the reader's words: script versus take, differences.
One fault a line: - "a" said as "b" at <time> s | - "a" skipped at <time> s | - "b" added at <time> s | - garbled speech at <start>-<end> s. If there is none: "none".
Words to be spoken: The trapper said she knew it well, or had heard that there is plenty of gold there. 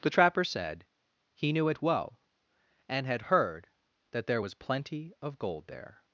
- "she" said as "he" at 1.3 s
- "or" said as "and" at 2.9 s
- "is" said as "was" at 4.4 s